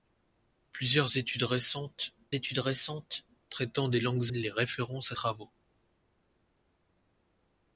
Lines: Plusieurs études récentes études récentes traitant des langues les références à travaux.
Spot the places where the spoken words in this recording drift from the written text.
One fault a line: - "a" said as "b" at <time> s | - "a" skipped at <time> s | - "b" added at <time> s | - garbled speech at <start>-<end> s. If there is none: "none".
none